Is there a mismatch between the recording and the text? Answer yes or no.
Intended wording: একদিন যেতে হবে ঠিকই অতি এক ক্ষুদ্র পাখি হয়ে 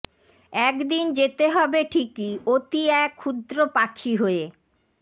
no